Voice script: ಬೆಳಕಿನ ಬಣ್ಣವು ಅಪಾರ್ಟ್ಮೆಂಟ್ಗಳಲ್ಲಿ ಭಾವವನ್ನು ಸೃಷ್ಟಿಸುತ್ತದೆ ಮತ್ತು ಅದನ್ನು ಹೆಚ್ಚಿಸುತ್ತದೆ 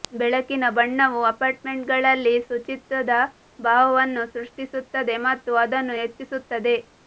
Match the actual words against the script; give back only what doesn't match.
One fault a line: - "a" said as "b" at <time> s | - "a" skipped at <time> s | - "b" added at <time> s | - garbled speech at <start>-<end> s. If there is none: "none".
- "ಶುಚಿತ್ವದ" added at 2.4 s